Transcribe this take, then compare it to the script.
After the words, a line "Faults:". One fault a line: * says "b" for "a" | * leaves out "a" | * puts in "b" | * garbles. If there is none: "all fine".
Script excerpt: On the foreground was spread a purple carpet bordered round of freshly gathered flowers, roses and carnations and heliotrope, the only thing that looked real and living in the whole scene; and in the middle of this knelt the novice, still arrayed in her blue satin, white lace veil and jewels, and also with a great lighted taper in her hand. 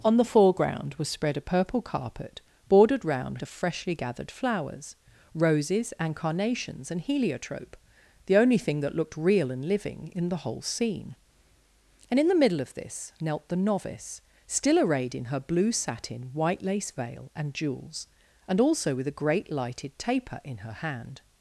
On the foreground was spread a purple carpet bordered round of freshly gathered flowers, roses and carnations and heliotrope, the only thing that looked real and living in the whole scene; and in the middle of this knelt the novice, still arrayed in her blue satin, white lace veil and jewels, and also with a great lighted taper in her hand.
Faults:
all fine